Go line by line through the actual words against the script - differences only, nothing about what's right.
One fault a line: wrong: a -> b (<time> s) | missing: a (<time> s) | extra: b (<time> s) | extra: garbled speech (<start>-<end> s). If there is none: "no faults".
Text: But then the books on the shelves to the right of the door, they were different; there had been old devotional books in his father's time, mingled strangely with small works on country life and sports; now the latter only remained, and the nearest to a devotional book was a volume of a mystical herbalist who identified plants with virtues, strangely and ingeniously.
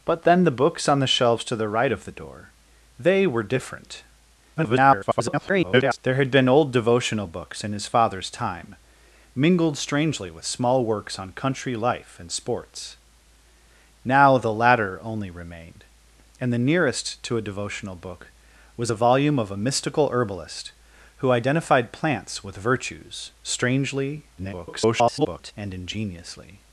extra: garbled speech (4.6-6.0 s)
extra: garbled speech (24.4-25.5 s)